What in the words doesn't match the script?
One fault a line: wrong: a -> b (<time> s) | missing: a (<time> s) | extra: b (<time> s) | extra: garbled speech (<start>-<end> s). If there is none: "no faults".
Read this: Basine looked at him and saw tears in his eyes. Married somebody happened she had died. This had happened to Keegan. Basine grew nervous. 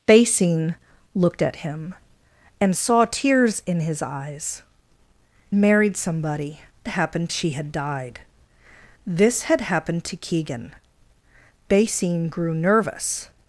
no faults